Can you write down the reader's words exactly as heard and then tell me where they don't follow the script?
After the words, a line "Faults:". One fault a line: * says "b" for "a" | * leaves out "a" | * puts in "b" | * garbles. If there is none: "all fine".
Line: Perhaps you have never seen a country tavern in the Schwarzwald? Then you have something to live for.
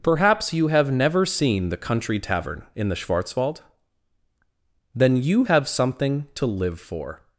Perhaps you have never seen the country tavern in the Schwarzwald? Then you have something to live for.
Faults:
* says "the" for "a"